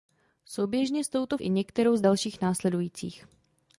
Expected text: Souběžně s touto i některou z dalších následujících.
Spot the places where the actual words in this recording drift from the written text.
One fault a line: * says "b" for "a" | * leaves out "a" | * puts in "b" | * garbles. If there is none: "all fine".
all fine